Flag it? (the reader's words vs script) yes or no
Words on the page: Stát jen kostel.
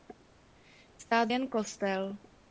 no